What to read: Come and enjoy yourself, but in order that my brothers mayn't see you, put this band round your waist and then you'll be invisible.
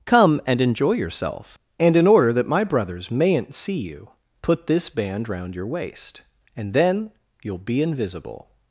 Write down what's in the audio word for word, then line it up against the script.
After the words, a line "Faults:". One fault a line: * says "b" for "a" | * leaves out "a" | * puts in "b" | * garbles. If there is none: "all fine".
Come and enjoy yourself, and in order that my brothers mayn't see you, put this band round your waist and then you'll be invisible.
Faults:
* says "and" for "but"